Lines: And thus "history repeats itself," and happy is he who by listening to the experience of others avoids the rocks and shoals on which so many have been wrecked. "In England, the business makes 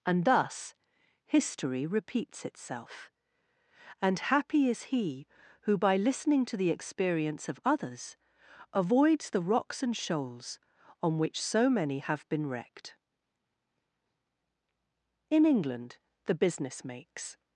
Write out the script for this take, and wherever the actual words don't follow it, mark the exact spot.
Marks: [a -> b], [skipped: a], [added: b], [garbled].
And thus "history repeats itself," and happy is he who by listening to the experience of others avoids the rocks and shoals on which so many have been wrecked. "In England, the business makes